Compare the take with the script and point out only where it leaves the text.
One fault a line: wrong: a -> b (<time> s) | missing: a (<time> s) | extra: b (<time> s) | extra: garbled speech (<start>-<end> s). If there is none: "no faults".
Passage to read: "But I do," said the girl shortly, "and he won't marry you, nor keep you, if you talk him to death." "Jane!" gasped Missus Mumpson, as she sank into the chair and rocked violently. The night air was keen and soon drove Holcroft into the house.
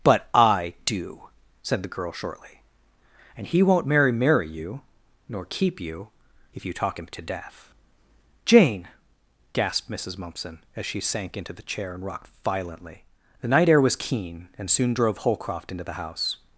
extra: marry (4.1 s)